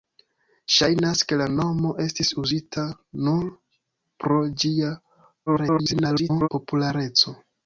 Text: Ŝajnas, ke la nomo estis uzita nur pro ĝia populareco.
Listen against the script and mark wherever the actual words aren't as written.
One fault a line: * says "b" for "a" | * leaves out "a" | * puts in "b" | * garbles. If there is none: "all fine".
* garbles